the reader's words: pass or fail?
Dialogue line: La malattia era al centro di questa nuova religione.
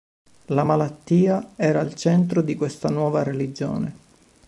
pass